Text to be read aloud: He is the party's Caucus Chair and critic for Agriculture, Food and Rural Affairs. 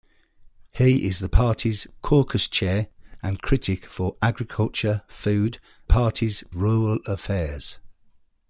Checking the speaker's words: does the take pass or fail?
fail